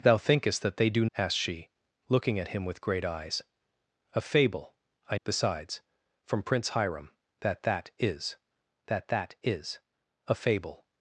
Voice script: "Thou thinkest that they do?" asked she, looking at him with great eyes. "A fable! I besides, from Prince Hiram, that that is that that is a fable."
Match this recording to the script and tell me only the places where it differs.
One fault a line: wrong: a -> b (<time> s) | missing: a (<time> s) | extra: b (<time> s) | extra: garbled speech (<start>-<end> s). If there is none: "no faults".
no faults